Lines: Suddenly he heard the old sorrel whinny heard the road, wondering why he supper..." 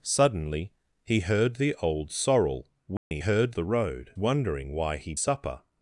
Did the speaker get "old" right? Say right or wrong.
right